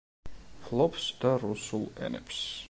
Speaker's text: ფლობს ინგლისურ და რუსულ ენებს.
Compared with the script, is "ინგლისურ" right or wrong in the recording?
wrong